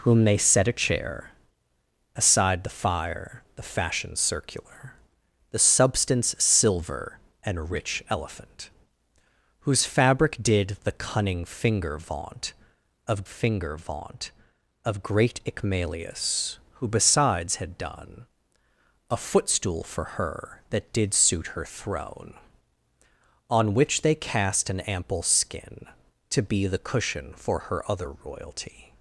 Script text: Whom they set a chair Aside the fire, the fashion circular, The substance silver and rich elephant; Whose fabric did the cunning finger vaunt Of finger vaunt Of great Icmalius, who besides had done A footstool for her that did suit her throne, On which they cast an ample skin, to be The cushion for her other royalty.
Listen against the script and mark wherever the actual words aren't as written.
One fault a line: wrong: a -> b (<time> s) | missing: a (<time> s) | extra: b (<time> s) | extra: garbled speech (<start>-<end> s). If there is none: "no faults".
no faults